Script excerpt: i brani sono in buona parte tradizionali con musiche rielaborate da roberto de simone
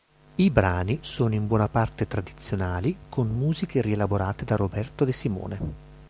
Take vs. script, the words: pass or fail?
pass